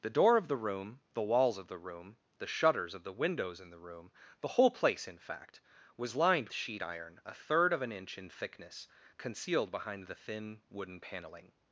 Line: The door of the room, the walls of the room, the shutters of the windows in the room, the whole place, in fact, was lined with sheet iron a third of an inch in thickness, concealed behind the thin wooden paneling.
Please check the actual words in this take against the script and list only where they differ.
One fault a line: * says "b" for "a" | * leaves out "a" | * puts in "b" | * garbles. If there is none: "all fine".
* leaves out "with"